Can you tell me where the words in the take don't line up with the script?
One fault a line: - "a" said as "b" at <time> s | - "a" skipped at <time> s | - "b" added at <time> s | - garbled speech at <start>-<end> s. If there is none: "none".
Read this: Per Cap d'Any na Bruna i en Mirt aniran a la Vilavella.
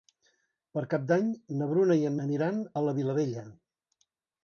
- "Mirt" skipped at 2.2 s